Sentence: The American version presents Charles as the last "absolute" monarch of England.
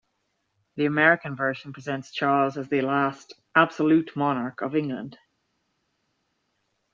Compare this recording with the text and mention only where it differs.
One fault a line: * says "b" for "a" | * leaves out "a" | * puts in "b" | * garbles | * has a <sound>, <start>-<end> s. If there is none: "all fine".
all fine